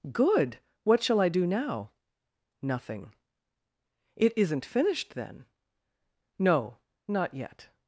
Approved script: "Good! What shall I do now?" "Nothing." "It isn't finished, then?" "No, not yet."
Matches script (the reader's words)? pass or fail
pass